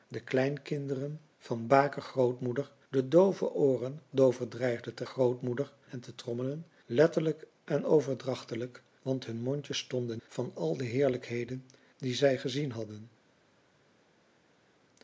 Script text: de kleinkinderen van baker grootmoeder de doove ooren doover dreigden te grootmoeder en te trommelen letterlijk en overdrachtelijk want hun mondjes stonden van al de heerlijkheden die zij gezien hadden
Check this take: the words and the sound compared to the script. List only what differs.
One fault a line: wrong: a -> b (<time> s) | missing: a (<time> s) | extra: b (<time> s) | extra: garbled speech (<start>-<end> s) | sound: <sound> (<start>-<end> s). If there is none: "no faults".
no faults